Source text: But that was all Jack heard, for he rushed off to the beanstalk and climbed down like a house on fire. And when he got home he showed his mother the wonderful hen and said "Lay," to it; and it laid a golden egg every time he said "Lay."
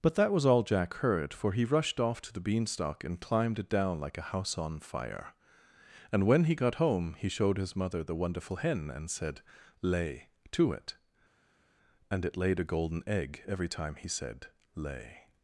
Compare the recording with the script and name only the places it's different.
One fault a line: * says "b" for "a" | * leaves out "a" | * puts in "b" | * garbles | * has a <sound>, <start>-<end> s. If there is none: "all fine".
* puts in "it"